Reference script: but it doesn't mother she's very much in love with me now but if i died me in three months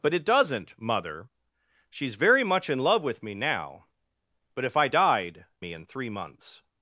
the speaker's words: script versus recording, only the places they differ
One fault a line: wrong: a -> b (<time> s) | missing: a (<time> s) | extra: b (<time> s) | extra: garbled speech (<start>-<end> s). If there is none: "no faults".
no faults